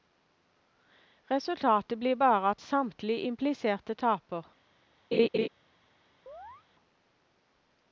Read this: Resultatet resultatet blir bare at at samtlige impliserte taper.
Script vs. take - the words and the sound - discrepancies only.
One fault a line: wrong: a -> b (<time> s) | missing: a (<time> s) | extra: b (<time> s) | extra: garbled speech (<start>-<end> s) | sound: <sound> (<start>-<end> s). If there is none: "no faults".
missing: resultatet (2.0 s)
missing: at (2.6 s)
sound: laugh (5.1-5.5 s)
sound: chirp (6.3-6.7 s)